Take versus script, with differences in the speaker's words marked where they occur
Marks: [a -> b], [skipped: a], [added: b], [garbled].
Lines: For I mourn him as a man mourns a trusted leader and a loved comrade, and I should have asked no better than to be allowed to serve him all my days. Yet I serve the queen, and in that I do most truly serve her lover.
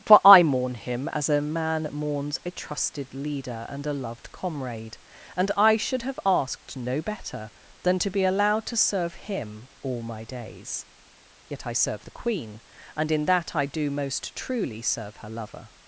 For I mourn him as a man mourns a trusted leader and a loved comrade, and I should have asked no better than to be allowed to serve him all my days. Yet I serve the queen, and in that I do most truly serve her lover.